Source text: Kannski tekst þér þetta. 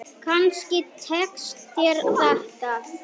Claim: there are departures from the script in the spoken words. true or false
false